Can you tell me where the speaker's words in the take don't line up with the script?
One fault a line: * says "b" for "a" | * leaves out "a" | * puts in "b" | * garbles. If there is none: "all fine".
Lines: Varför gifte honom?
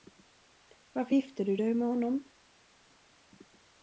* puts in "du dig med"